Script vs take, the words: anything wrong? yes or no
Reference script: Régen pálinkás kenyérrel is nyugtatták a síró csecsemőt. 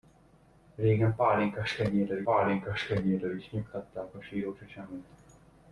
yes